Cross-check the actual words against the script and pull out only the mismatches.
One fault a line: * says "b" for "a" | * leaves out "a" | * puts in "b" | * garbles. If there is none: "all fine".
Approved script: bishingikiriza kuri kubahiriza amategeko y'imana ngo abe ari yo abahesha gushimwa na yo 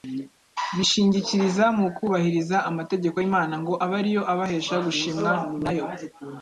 * says "mu" for "kuri"